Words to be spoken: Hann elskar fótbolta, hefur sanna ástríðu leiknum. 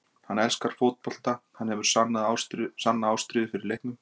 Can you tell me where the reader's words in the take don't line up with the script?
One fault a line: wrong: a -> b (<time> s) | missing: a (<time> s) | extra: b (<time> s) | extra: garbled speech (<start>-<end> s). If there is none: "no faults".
extra: hann (1.6 s)
extra: fyrir (3.5 s)